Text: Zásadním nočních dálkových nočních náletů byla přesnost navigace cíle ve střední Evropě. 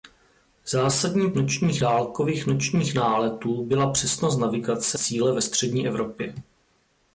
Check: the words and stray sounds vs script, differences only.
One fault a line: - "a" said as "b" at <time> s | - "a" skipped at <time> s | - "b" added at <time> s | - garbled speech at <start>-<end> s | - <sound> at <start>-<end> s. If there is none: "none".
none